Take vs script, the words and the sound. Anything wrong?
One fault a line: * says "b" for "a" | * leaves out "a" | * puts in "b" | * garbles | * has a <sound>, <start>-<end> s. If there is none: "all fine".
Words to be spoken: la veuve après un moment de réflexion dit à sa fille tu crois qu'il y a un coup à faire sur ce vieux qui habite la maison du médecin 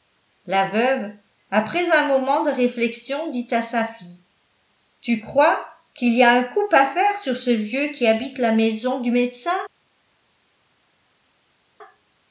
all fine